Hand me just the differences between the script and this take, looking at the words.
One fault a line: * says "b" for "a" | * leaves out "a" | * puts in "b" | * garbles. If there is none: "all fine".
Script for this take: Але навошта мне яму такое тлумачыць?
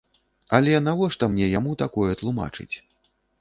all fine